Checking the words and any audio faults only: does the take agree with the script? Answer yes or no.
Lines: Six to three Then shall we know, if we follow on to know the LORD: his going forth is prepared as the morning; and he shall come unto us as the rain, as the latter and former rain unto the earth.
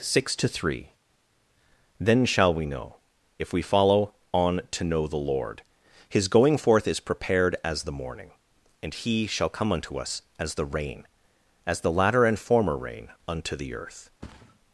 no